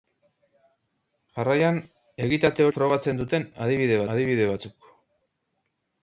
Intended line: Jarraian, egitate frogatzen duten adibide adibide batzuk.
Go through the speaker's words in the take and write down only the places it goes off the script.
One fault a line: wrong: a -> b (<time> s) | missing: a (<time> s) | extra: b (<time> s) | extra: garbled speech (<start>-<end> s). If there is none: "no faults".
no faults